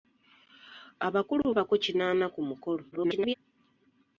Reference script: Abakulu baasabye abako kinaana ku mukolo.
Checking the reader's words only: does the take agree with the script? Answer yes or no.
no